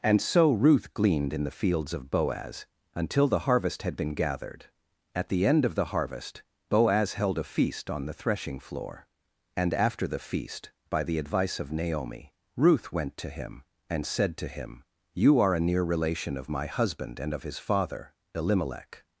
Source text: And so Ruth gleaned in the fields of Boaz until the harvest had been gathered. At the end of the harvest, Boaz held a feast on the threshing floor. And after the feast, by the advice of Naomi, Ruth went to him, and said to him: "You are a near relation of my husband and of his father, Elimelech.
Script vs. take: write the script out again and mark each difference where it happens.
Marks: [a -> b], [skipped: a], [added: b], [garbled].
And so Ruth gleaned in the fields of Boaz until the harvest had been gathered. At the end of the harvest, Boaz held a feast on the threshing floor. And after the feast, by the advice of Naomi, Ruth went to him, and said to him: "You are a near relation of my husband and of his father, Elimelech.